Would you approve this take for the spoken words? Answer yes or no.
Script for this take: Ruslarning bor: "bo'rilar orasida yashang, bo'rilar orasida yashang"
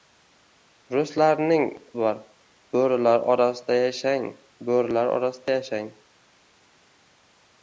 yes